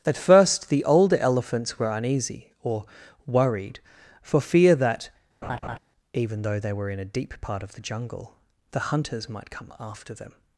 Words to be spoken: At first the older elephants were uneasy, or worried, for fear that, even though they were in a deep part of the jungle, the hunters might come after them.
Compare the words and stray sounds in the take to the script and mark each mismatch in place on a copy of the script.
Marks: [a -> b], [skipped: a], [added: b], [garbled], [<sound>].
At first the older elephants were uneasy, or worried, for fear that, [laugh] even though they were in a deep part of the jungle, the hunters might come after them.